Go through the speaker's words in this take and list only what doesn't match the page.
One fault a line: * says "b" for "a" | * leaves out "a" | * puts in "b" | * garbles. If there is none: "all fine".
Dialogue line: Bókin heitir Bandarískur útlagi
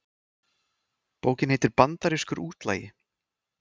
all fine